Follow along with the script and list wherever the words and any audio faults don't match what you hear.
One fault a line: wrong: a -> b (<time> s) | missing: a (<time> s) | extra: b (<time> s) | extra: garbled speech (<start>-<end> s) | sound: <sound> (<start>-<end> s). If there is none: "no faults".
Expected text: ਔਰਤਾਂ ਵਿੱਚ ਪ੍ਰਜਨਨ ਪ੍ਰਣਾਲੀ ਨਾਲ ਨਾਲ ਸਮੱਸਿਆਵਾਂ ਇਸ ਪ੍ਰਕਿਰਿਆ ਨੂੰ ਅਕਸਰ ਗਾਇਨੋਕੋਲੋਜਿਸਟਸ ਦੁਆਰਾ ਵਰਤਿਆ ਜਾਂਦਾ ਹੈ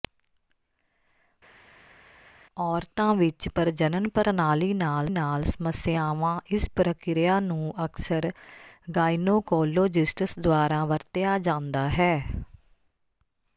no faults